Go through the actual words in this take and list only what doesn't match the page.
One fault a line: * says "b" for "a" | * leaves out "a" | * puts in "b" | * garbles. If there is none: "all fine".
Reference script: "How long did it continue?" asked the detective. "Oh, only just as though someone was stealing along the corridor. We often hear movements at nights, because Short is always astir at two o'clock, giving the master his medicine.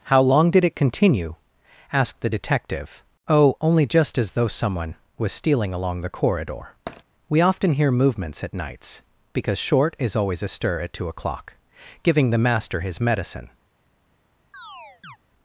all fine